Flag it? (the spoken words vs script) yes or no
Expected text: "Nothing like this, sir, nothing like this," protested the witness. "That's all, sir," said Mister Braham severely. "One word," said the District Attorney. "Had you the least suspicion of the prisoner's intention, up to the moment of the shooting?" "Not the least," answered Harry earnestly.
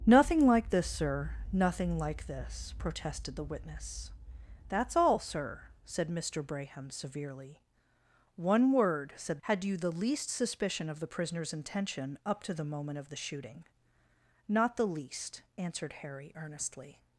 yes